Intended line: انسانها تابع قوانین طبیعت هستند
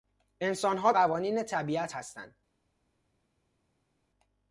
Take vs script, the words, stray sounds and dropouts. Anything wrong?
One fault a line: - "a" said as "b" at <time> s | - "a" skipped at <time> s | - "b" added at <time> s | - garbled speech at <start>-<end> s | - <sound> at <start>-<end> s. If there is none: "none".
- "تابع" skipped at 0.9 s